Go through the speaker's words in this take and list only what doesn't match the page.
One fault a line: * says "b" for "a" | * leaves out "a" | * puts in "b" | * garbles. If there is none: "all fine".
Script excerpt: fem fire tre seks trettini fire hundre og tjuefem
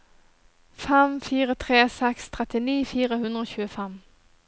all fine